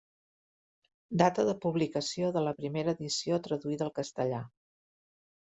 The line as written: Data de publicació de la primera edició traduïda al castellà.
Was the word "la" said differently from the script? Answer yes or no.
no